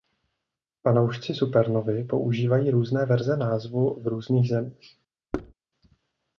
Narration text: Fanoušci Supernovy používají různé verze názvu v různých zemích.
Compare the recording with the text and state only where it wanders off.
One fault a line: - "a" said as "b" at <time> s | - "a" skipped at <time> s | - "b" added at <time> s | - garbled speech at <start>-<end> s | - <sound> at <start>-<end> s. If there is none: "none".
- thud at 5.3-5.5 s